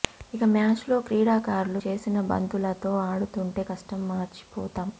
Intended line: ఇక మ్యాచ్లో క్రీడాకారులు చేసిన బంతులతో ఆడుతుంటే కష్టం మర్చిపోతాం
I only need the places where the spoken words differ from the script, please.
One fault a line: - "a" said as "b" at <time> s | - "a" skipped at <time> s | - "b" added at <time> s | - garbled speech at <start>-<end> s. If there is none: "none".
none